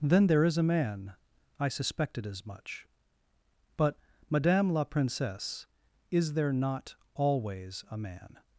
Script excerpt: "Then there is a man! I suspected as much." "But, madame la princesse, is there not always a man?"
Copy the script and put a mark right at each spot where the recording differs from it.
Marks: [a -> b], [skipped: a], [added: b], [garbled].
"Then there is a man! I suspected as much." "But, madame la princesse, is there not always a man?"